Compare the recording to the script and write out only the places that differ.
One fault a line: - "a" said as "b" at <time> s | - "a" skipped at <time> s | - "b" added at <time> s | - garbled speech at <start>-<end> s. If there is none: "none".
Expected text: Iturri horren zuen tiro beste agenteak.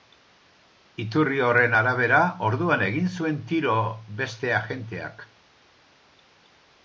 - "arabera orduan egin" added at 1.8 s